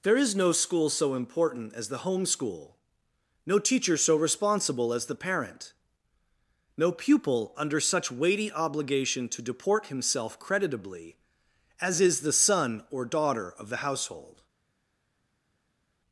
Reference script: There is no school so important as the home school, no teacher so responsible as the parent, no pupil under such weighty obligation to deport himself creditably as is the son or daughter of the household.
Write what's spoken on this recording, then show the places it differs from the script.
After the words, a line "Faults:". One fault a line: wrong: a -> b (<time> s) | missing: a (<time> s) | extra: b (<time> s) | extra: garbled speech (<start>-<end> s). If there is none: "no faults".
There is no school so important as the home school, no teacher so responsible as the parent, no pupil under such weighty obligation to deport himself creditably as is the son or daughter of the household.
Faults:
no faults